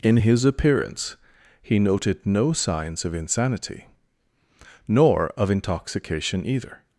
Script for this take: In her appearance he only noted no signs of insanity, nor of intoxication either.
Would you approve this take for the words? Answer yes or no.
no